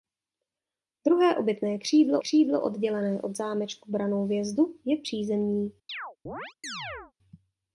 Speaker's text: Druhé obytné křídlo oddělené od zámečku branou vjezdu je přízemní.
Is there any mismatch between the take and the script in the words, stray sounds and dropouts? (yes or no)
yes